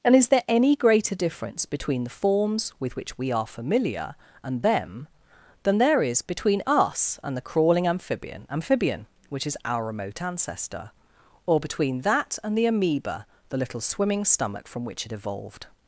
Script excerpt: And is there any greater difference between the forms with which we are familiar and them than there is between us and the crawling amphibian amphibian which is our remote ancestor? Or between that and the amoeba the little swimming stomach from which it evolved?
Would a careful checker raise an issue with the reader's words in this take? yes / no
no